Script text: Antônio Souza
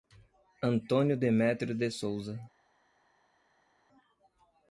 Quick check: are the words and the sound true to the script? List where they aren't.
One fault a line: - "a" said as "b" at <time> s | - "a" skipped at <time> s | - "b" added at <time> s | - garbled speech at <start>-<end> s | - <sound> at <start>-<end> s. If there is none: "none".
- "Demetrio de" added at 1.1 s